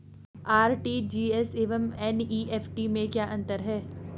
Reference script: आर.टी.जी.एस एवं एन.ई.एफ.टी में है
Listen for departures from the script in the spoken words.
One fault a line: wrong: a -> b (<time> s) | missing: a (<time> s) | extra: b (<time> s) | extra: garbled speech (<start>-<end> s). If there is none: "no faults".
extra: क्या अंतर (3.1 s)